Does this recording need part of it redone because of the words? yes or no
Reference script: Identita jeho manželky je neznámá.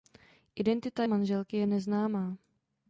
yes